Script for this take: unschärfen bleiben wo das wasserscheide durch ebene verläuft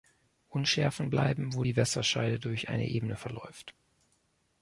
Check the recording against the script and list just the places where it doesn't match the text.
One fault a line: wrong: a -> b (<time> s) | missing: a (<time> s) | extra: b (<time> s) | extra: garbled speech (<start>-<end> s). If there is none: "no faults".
wrong: das -> die (1.6 s)
extra: eine (2.7 s)